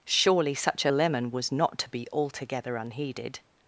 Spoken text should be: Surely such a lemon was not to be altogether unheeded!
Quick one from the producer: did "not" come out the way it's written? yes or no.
yes